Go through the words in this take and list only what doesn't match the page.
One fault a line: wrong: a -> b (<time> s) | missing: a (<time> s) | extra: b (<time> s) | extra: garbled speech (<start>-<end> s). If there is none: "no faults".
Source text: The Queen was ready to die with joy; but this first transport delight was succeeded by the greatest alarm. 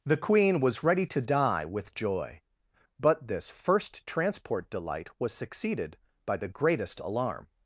no faults